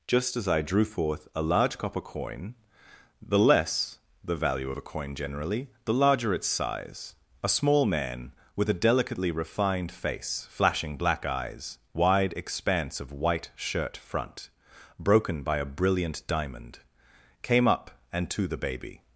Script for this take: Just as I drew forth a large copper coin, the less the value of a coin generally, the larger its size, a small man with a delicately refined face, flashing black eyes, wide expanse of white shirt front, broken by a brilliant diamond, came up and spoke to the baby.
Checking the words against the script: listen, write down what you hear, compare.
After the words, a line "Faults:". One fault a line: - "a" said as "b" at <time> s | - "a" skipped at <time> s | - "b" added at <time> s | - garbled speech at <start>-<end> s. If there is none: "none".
Just as I drew forth a large copper coin, the less the value of a coin generally, the larger its size, a small man with a delicately refined face, flashing black eyes, wide expanse of white shirt front, broken by a brilliant diamond, came up and to the baby.
Faults:
- "spoke" skipped at 18.3 s